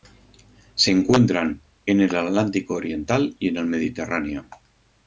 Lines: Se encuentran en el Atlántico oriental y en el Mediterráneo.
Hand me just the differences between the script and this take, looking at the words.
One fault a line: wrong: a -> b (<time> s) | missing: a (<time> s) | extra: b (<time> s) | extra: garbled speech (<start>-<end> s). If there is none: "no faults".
no faults